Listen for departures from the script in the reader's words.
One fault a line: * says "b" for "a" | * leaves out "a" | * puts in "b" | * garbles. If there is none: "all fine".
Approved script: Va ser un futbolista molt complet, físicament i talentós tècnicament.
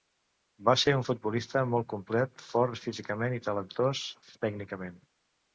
* puts in "fort"